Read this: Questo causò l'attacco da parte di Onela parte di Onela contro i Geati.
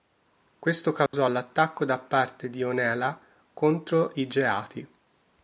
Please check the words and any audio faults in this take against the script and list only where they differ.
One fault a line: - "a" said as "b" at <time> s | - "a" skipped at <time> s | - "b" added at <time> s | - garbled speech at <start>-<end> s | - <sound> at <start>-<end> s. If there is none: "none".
- dropout at 1.1-1.1 s
- "parte di Onela" skipped at 3.2 s